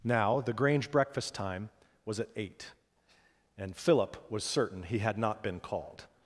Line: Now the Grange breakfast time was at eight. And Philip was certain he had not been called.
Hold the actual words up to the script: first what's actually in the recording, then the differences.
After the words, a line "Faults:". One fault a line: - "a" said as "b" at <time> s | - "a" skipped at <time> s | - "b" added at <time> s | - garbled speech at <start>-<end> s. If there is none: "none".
Now the Grange breakfast time was at eight. And Philip was certain he had not been called.
Faults:
none